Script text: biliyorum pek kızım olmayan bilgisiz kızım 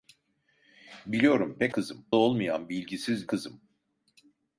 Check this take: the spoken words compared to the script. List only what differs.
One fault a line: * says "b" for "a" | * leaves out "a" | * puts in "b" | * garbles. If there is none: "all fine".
all fine